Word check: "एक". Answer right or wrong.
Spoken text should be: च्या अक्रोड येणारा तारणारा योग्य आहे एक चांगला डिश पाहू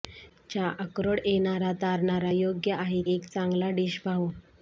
right